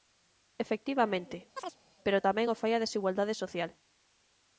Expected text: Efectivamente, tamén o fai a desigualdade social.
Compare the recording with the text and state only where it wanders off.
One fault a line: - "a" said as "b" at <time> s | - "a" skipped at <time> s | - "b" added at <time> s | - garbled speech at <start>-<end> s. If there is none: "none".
- "pero" added at 2.0 s